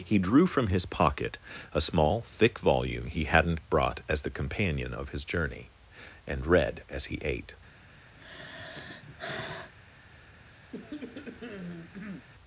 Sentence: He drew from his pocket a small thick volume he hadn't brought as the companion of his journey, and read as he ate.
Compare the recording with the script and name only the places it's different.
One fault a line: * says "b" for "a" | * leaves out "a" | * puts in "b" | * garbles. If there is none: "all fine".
all fine